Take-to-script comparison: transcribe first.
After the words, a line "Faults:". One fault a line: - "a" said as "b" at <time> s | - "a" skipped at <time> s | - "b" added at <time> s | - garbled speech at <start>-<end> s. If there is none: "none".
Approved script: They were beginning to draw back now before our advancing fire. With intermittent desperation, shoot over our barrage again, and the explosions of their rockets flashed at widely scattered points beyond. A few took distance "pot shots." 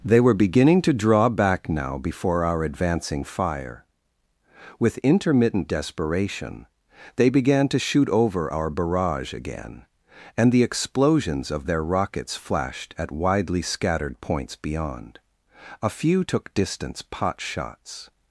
They were beginning to draw back now before our advancing fire. With intermittent desperation, they began to shoot over our barrage again, and the explosions of their rockets flashed at widely scattered points beyond. A few took distance "pot shots."
Faults:
- "they began to" added at 7.2 s